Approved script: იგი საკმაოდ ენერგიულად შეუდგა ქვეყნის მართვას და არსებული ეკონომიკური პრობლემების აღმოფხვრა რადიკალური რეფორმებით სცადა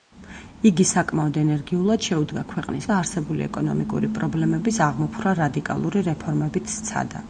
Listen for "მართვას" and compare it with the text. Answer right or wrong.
wrong